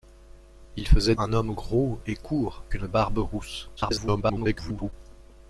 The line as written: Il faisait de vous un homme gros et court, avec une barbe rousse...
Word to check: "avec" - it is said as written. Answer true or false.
false